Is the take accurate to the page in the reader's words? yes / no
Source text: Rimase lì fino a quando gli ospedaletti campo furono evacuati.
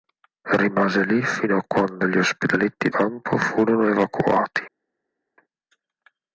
yes